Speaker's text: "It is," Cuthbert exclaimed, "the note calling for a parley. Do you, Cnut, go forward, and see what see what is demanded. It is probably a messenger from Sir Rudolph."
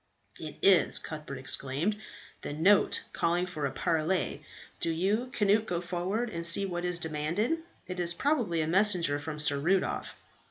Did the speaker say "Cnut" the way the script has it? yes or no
yes